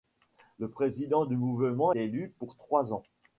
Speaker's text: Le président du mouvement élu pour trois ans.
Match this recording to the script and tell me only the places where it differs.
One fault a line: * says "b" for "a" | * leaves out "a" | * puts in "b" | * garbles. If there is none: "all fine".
all fine